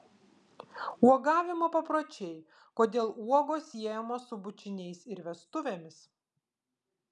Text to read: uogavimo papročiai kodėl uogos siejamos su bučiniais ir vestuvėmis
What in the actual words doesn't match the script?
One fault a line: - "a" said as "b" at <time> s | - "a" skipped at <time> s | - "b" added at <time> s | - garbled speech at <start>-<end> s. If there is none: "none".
none